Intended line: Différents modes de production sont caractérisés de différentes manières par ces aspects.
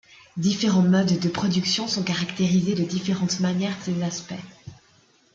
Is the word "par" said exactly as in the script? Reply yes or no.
no